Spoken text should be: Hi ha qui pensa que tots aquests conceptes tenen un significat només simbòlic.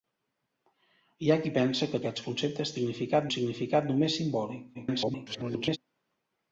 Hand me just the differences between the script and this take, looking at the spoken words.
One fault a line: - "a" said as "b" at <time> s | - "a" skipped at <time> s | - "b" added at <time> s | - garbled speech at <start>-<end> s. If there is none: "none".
- "tots" skipped at 2.0 s
- "tenen" said as "significat" at 2.8 s
- garbled speech at 4.7-5.8 s